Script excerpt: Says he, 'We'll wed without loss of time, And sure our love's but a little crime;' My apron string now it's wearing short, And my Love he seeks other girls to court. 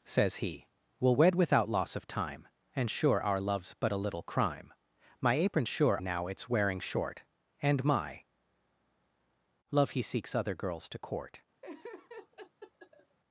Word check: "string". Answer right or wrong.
wrong